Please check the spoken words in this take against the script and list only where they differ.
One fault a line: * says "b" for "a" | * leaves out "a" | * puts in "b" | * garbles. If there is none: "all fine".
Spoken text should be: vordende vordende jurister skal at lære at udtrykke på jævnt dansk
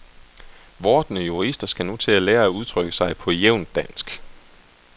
* leaves out "vordende"
* puts in "nu til"
* puts in "sig"